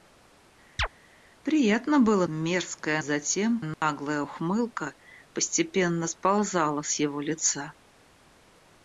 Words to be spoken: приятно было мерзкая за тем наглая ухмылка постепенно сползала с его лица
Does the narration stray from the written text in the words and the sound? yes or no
yes